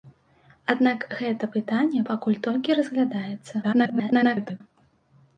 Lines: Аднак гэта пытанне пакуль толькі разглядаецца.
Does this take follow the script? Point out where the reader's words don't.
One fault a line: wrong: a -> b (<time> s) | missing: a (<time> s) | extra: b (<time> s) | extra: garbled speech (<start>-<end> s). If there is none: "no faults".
extra: garbled speech (3.6-4.6 s)